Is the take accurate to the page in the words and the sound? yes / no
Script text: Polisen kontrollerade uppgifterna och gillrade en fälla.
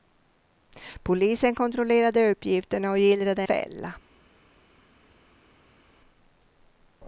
no